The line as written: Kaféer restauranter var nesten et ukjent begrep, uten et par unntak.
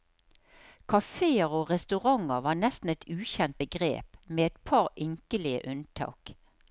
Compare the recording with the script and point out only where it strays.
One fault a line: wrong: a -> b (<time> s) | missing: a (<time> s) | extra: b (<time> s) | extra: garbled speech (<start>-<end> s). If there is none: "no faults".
extra: og (1.6 s)
wrong: uten -> med (4.3 s)
extra: ynkelige (5.1 s)